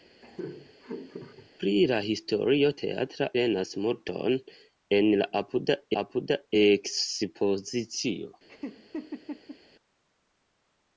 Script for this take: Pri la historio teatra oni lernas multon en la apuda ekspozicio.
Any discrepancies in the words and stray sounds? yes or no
yes